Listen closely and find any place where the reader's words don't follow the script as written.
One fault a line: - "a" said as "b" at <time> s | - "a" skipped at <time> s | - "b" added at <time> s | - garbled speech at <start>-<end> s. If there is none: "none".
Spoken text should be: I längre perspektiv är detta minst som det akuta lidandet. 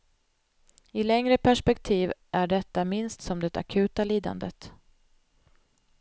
none